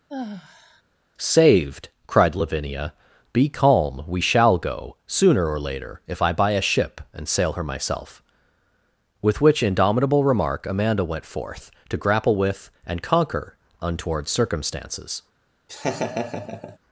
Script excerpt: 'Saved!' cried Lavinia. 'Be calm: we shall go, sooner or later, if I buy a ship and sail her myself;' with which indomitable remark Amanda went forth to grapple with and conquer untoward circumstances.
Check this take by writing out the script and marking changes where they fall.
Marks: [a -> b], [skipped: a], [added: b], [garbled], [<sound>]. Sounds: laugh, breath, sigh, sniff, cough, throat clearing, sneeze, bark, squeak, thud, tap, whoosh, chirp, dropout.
[sigh] 'Saved!' cried Lavinia. 'Be calm: we shall go, sooner or later, if I buy a ship and sail her myself;' with which indomitable remark Amanda went forth to grapple with and conquer untoward circumstances. [laugh]